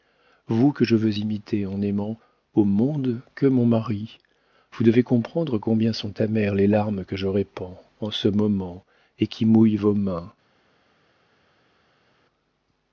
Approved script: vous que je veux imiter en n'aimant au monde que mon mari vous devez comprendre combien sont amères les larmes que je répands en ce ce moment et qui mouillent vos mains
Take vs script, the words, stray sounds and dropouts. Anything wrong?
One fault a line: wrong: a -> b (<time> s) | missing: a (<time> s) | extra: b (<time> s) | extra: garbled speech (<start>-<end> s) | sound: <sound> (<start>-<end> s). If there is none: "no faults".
missing: ce (8.3 s)